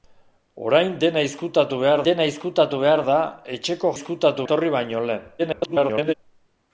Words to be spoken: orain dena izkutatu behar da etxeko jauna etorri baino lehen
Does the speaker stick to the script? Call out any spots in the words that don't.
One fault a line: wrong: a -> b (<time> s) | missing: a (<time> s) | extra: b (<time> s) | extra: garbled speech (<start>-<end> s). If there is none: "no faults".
extra: dena izkutatu behar (2.1 s)
wrong: jauna -> izkutatu (3.9 s)
extra: garbled speech (5.4-6.1 s)